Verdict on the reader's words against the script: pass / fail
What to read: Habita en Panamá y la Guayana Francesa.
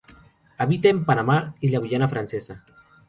pass